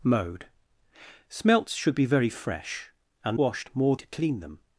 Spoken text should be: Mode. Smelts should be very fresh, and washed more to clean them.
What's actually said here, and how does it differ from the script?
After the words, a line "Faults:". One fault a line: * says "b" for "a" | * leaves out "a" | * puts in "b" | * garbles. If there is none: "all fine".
Mode. Smelts should be very fresh, and washed more to clean them.
Faults:
all fine